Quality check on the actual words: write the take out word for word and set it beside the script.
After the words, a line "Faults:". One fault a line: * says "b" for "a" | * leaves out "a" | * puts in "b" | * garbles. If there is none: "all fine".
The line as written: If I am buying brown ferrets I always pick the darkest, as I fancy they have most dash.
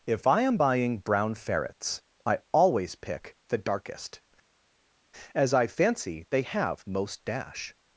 If I am buying brown ferrets I always pick the darkest, as I fancy they have most dash.
Faults:
all fine